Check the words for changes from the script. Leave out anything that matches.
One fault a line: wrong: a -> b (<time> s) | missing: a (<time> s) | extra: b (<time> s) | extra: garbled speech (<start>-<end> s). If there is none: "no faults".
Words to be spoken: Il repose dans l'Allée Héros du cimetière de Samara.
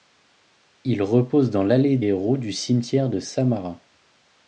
no faults